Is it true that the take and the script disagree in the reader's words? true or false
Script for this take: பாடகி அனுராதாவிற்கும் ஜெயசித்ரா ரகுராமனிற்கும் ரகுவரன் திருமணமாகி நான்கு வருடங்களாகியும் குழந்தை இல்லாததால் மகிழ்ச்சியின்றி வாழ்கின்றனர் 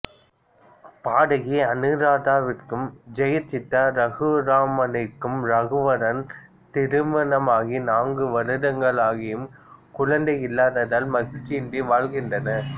false